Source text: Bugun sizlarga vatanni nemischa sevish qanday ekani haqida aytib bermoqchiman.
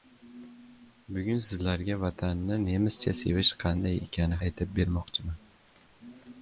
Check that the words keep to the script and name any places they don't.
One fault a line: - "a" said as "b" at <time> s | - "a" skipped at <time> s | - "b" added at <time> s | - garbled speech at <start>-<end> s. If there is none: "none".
- "haqida" skipped at 4.4 s